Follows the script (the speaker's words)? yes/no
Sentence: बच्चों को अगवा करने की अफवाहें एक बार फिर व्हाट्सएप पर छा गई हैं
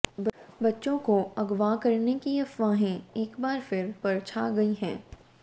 no